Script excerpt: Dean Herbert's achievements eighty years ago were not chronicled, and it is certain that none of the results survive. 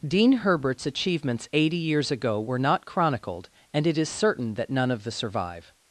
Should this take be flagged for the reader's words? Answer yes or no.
yes